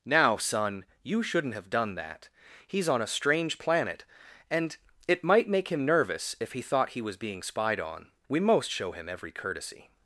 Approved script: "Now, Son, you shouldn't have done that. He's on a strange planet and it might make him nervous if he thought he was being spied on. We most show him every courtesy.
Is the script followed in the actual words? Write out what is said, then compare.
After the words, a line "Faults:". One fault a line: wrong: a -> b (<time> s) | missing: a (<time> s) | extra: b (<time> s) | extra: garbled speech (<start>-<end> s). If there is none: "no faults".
"Now, Son, you shouldn't have done that. He's on a strange planet and it might make him nervous if he thought he was being spied on. We most show him every courtesy.
Faults:
no faults